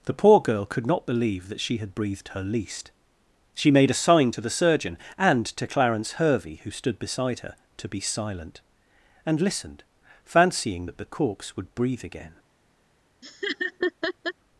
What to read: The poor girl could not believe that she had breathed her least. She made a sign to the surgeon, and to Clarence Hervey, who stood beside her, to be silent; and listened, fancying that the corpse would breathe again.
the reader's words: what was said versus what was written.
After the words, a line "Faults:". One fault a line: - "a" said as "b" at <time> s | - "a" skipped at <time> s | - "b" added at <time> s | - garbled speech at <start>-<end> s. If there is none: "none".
The poor girl could not believe that she had breathed her least. She made a sign to the surgeon, and to Clarence Hervey, who stood beside her, to be silent; and listened, fancying that the corpse would breathe again.
Faults:
none